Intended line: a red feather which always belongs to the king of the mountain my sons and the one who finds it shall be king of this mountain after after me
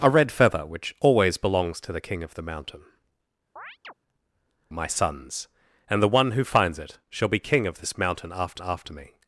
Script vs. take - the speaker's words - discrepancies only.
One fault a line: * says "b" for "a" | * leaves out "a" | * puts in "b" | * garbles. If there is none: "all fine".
all fine